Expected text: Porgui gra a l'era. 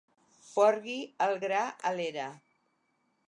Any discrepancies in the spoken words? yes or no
yes